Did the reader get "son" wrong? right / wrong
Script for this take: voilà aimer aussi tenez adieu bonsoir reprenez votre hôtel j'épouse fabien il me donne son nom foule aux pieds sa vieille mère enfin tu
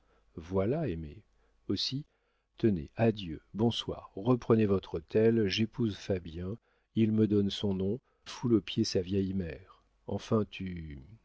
right